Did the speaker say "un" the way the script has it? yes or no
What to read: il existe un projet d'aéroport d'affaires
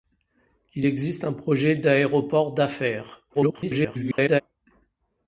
yes